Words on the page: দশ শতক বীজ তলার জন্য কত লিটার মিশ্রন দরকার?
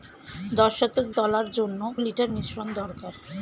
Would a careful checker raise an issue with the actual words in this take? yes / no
yes